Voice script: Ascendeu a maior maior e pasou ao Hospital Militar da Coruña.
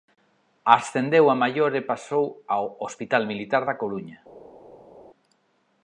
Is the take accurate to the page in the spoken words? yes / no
no